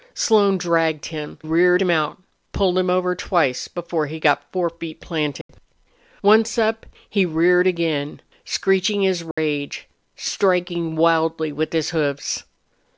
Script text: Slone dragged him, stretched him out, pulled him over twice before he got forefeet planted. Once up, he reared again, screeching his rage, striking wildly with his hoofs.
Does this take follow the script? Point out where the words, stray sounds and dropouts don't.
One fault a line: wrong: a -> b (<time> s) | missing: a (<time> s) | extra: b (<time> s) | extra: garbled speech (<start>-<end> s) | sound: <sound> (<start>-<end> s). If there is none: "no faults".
wrong: stretched -> reared (1.4 s)
sound: dropout (5.4-5.5 s)
sound: dropout (9.3-9.4 s)